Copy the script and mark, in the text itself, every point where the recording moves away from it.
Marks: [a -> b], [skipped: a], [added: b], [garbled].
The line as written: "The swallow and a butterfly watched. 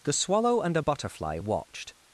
"The swallow and a butterfly watched.